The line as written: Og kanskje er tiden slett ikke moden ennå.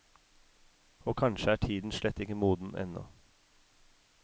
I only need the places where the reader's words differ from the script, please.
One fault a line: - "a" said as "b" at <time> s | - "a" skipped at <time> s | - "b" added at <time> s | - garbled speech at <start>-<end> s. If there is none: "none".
none